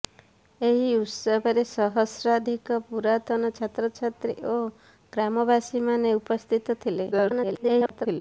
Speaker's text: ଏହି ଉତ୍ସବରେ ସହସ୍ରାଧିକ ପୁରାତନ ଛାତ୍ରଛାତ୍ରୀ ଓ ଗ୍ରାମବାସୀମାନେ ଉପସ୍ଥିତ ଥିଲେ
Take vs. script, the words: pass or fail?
fail